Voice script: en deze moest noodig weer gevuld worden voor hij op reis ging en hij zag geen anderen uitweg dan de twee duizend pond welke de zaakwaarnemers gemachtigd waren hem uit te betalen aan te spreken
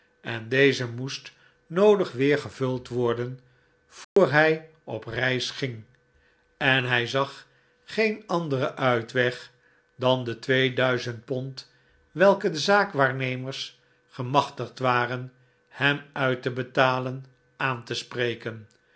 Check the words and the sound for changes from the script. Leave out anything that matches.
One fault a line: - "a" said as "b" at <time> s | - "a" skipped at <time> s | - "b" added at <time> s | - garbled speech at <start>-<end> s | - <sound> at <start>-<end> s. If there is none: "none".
- dropout at 4.0-4.2 s